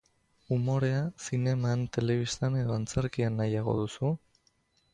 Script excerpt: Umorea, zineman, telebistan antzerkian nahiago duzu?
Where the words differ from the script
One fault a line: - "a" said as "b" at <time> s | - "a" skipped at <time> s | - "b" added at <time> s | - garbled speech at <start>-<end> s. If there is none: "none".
- "edo" added at 2.6 s